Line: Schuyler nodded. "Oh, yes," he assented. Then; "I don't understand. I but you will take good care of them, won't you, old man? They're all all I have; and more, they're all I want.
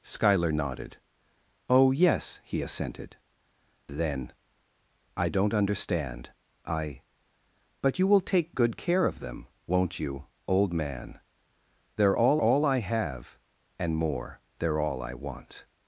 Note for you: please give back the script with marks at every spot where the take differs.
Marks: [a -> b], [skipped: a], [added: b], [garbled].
Schuyler nodded. "Oh, yes," he assented. Then; "I don't understand. I but you will take good care of them, won't you, old man? They're all all I have; and more, they're all I want.